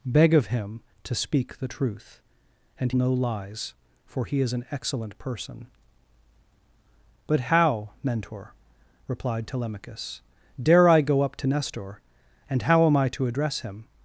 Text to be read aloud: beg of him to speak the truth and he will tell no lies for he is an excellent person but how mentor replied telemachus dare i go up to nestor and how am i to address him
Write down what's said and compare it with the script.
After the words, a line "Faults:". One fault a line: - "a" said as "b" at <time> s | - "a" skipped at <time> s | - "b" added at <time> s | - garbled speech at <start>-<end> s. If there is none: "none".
beg of him to speak the truth and no lies for he is an excellent person but how mentor replied telemachus dare i go up to nestor and how am i to address him
Faults:
- "he will tell" skipped at 2.9 s